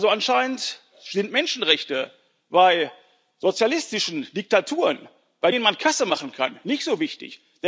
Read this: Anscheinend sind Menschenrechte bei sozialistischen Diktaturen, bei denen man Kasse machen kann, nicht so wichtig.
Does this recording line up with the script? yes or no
yes